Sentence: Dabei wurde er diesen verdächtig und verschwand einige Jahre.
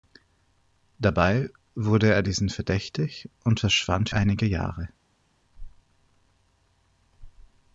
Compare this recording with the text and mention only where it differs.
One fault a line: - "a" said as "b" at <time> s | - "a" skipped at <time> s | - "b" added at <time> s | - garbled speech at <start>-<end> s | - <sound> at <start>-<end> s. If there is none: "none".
none